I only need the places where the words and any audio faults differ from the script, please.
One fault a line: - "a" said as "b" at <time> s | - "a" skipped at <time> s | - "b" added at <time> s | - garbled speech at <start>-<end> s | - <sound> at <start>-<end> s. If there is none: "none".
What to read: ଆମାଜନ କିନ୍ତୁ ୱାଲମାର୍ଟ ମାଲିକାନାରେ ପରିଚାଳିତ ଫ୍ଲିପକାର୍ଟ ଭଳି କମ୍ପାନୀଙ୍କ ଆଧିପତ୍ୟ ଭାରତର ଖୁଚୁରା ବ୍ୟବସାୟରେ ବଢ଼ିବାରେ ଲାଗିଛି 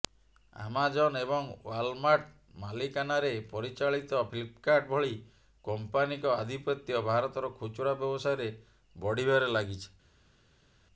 - "କିନ୍ତୁ" said as "ଏବଂ" at 1.2 s